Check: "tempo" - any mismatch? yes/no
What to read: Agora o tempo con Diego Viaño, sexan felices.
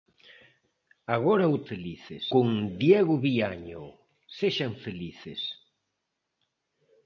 yes